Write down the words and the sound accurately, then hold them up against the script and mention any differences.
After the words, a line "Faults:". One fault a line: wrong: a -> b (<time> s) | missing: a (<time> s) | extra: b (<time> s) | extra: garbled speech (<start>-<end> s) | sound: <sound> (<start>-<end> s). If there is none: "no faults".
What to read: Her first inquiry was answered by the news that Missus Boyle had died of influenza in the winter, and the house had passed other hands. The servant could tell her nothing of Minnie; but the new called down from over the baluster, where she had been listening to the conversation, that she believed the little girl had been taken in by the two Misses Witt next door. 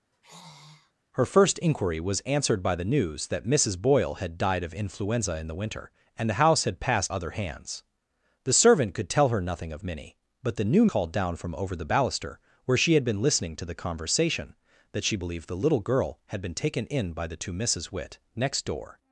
Her first inquiry was answered by the news that Missus Boyle had died of influenza in the winter, and the house had passed other hands. The servant could tell her nothing of Minnie; but the new called down from over the baluster, where she had been listening to the conversation, that she believed the little girl had been taken in by the two Misses Witt next door.
Faults:
sound: sigh (0.1-0.9 s)